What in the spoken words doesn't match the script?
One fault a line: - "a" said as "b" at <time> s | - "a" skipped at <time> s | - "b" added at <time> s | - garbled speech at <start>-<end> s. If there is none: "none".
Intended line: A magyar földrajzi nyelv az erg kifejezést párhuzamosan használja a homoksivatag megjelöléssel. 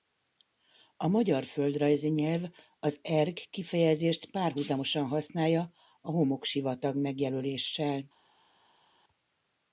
none